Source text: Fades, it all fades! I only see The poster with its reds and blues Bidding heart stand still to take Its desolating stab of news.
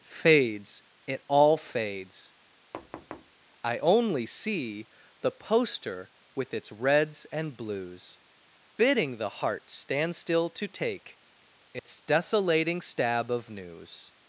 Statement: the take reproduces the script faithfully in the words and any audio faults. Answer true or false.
false